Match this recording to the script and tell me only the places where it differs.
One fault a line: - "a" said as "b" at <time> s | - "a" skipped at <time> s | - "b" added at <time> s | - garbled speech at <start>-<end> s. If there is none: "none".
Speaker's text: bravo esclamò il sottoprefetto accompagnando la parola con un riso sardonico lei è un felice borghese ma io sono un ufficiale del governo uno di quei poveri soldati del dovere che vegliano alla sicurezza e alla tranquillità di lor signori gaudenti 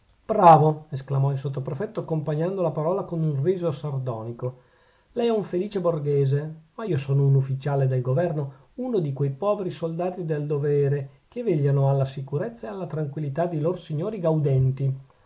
none